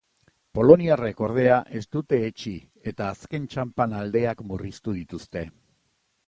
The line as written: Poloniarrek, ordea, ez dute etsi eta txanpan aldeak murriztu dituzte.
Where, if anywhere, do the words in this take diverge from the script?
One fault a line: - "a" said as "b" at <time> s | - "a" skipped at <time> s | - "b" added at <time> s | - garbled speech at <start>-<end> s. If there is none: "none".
- "azken" added at 3.1 s